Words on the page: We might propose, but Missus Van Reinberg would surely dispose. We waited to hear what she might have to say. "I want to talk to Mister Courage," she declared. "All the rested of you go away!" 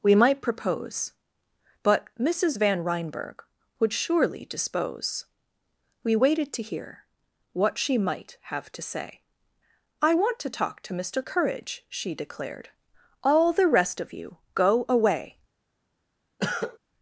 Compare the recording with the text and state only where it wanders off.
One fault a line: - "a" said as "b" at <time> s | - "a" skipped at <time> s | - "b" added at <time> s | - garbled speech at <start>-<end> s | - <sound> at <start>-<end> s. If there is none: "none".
- "rested" said as "rest" at 13.7 s
- cough at 16.4-16.8 s